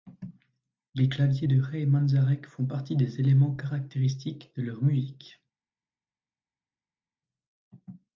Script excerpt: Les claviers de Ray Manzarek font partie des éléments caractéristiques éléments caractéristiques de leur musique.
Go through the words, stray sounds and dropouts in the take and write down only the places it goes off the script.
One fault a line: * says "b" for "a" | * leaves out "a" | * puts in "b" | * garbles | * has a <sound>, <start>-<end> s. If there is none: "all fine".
* leaves out "éléments caractéristiques"